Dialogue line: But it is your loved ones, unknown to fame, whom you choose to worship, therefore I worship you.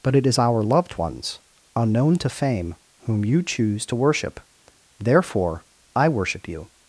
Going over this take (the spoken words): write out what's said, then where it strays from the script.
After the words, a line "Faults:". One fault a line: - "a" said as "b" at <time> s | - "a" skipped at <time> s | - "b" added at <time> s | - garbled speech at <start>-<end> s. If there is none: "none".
But it is our loved ones, unknown to fame, whom you choose to worship, therefore I worship you.
Faults:
- "your" said as "our" at 0.4 s